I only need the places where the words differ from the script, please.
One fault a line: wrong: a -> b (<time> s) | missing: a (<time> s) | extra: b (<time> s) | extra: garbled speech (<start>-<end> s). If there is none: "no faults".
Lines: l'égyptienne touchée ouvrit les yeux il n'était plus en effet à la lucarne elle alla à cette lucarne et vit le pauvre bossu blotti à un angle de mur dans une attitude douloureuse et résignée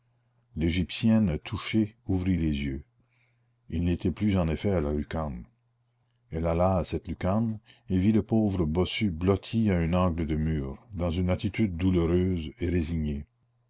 no faults